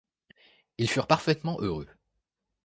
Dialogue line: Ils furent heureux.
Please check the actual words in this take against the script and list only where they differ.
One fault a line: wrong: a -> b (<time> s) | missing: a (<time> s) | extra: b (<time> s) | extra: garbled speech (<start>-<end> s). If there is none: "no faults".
extra: parfaitement (1.1 s)